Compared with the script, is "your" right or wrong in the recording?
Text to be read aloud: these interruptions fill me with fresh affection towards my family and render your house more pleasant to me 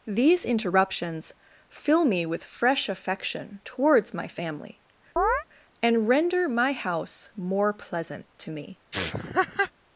wrong